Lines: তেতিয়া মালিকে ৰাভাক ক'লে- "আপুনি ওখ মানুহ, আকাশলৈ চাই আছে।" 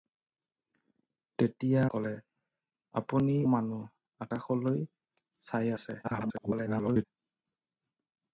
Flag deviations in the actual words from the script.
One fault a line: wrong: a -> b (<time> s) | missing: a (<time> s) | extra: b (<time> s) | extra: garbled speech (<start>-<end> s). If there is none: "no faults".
missing: মালিকে ৰাভাক (1.8 s)
missing: ওখ (3.3 s)
extra: garbled speech (6.0-7.1 s)